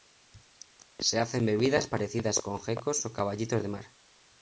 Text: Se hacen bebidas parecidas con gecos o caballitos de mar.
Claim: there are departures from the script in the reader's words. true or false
false